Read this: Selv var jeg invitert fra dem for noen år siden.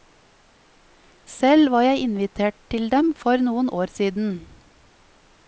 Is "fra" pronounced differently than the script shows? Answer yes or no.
yes